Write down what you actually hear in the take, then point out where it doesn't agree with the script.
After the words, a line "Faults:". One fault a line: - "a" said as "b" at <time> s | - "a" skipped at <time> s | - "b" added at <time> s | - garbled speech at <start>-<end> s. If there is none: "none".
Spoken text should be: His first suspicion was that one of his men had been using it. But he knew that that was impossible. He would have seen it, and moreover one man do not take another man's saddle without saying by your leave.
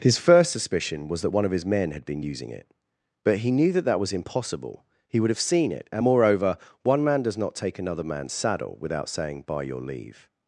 His first suspicion was that one of his men had been using it. But he knew that that was impossible. He would have seen it, and moreover one man does not take another man's saddle without saying by your leave.
Faults:
- "do" said as "does" at 7.2 s